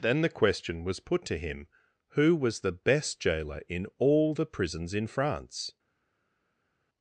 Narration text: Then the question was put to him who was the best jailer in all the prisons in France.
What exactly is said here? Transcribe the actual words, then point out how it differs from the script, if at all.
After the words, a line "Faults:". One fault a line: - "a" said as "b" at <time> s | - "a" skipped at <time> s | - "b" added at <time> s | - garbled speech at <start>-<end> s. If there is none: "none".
Then the question was put to him who was the best jailer in all the prisons in France.
Faults:
none